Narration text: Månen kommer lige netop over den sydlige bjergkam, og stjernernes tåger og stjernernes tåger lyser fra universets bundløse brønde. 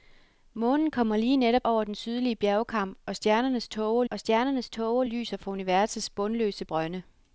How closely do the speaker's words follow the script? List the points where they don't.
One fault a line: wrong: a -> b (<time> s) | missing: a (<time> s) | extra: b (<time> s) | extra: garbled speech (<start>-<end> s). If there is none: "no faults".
no faults